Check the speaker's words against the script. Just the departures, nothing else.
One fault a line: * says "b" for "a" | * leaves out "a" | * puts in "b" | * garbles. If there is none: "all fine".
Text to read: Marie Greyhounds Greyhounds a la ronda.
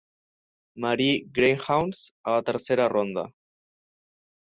* leaves out "Greyhounds"
* puts in "tercera"